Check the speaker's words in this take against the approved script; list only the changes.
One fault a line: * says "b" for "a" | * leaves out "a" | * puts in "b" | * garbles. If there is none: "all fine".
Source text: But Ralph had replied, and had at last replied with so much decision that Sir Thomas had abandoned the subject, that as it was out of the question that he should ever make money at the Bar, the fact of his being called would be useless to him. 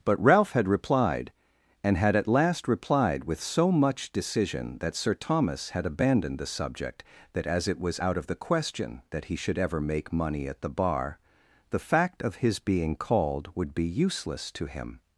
all fine